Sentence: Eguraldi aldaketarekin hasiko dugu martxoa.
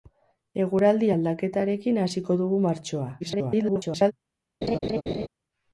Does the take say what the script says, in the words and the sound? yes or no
no